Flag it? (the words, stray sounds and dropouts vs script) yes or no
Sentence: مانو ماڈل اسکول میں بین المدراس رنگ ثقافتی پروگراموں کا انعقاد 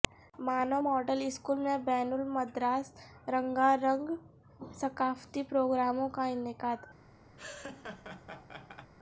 yes